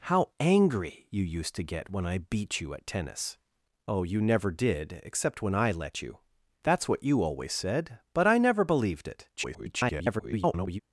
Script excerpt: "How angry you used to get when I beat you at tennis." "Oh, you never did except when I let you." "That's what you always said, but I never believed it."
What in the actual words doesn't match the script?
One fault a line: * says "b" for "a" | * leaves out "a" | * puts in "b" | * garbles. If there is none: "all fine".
* garbles